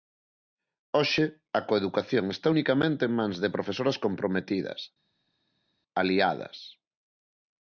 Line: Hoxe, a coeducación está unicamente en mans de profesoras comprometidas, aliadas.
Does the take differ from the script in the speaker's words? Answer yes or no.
no